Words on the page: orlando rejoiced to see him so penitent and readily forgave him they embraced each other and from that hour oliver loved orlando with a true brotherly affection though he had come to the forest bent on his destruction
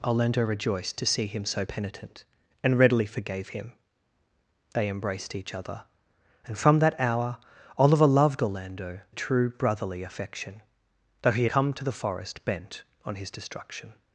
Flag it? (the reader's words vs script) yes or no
yes